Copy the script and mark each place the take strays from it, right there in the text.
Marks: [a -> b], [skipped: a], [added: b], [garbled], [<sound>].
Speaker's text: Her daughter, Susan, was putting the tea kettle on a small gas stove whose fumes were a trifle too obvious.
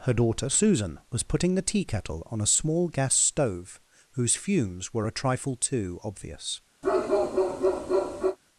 Her daughter, Susan, was putting the tea kettle on a small gas stove whose fumes were a trifle too obvious. [bark]